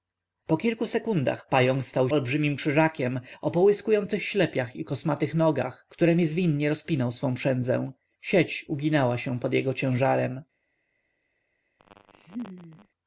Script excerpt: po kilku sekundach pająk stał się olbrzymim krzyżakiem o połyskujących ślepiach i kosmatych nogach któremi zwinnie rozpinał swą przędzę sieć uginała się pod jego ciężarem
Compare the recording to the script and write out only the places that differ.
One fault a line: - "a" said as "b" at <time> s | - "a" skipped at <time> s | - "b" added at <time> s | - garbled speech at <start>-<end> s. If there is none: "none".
- "się" skipped at 2.1 s